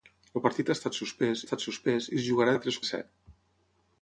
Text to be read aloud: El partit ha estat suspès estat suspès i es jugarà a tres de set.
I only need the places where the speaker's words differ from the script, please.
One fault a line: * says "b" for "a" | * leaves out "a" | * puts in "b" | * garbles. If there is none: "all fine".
all fine